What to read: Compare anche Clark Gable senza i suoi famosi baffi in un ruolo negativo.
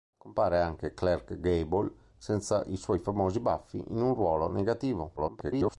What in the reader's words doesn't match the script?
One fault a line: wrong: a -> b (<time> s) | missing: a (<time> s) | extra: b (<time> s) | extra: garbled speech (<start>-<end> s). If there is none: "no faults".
extra: garbled speech (5.2-5.8 s)